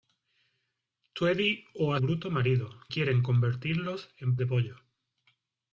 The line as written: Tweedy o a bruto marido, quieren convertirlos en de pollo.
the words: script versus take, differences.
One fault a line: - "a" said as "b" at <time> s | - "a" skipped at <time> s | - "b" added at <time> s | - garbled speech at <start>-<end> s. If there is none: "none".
none